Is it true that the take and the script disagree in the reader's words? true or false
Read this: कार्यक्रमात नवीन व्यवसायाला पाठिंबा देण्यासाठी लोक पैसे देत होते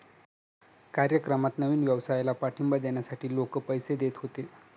false